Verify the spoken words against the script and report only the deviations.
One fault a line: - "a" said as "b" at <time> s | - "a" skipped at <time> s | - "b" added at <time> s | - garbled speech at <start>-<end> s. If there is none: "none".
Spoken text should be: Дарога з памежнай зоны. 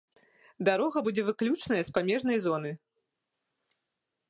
- "будзе выключаная" added at 1.1 s